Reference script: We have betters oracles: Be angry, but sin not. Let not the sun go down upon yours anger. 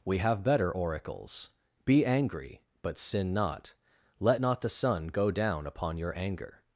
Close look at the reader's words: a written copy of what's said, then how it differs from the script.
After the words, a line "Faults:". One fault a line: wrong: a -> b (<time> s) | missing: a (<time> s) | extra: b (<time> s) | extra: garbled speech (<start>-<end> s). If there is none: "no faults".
We have better oracles: Be angry, but sin not. Let not the sun go down upon your anger.
Faults:
wrong: betters -> better (0.4 s)
wrong: yours -> your (6.0 s)